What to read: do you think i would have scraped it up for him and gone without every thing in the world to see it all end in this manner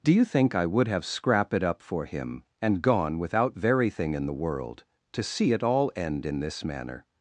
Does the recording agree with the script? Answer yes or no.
no